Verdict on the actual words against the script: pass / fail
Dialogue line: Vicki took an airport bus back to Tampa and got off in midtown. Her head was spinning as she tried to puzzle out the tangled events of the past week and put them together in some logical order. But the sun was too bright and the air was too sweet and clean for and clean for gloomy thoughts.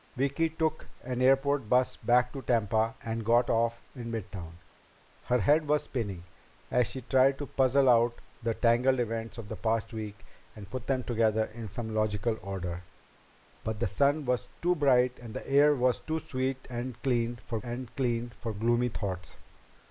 pass